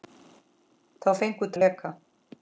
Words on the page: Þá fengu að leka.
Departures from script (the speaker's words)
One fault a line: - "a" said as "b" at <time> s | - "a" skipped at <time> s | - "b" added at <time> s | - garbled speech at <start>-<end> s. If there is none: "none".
none